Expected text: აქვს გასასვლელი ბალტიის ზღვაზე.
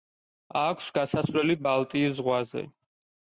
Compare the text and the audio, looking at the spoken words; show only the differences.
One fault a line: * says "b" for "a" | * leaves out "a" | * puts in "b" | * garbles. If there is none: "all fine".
all fine